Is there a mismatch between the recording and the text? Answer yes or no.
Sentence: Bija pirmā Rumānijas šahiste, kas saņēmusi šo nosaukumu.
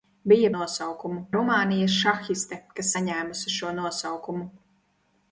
yes